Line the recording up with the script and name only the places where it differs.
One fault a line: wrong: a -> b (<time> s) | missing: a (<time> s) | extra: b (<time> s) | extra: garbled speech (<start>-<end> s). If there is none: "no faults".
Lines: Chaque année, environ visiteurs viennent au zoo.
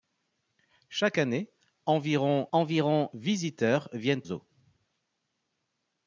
extra: environ (2.5 s)
missing: au (4.2 s)